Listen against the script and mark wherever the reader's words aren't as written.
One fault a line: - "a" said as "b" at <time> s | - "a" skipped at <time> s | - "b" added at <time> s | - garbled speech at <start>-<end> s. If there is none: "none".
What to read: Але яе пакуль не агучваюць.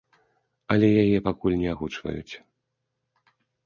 none